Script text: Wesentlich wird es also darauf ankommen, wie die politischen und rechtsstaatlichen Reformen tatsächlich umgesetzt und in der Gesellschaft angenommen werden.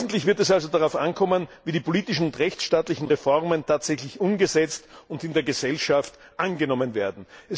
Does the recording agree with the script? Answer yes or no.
yes